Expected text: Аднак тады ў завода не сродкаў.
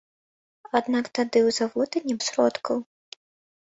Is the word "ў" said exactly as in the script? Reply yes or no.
yes